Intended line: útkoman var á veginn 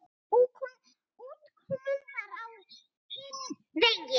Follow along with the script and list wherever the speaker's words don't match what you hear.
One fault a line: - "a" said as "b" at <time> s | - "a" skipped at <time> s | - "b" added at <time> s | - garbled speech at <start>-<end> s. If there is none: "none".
- "hinn" added at 3.1 s